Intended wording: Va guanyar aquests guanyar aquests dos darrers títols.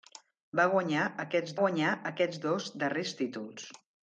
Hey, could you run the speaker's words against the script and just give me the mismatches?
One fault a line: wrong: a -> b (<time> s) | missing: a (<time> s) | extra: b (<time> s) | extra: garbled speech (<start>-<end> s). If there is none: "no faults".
no faults